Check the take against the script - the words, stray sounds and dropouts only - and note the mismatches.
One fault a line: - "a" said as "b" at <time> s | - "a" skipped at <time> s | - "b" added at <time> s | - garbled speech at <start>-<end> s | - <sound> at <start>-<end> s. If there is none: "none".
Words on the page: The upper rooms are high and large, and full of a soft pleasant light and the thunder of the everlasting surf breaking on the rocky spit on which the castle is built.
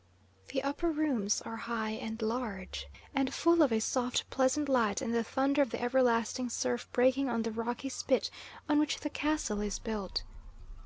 none